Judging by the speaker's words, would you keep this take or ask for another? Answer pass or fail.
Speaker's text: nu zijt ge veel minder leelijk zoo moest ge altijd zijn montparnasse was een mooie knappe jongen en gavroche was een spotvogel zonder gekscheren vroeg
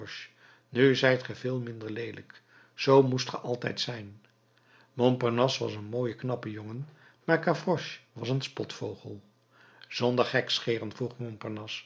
fail